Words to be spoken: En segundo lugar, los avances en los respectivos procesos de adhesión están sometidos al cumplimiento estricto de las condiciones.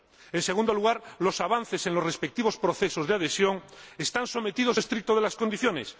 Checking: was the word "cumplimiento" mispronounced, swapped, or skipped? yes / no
yes